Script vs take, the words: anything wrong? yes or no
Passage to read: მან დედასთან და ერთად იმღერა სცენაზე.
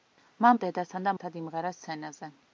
no